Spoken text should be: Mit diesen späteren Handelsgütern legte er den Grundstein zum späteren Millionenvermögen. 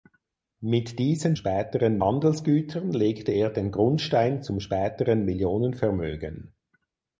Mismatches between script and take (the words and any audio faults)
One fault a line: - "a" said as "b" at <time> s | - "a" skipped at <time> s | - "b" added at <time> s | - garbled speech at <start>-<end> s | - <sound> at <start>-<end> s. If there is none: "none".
none